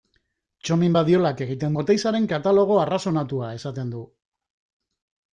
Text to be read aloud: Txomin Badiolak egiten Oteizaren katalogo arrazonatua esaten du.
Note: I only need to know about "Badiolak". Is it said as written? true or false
true